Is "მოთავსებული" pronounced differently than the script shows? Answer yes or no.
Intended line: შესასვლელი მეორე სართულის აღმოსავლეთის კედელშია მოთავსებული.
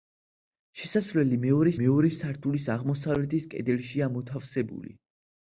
no